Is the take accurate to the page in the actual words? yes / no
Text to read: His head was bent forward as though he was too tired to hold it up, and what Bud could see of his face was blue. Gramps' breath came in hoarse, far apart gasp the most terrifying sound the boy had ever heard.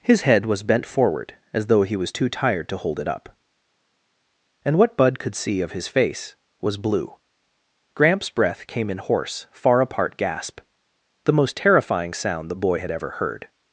yes